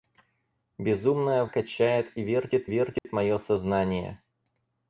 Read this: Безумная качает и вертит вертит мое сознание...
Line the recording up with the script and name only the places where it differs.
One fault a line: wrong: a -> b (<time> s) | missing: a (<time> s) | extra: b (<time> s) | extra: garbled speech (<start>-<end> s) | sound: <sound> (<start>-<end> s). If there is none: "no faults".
sound: dropout (3.0-3.0 s)